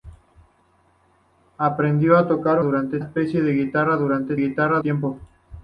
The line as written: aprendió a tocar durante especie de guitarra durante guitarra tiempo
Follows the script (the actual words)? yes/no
yes